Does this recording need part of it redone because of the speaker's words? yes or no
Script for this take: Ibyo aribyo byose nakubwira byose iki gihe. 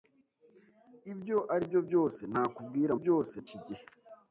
no